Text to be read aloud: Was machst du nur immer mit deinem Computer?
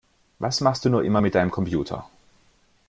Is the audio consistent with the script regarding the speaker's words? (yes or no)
yes